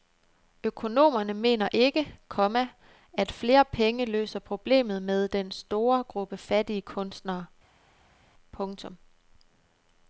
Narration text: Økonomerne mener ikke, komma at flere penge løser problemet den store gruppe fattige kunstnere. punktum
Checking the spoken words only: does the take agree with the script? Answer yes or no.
no